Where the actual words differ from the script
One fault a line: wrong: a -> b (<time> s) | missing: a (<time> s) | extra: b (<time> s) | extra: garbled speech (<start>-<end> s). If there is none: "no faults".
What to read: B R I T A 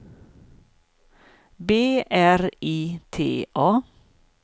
no faults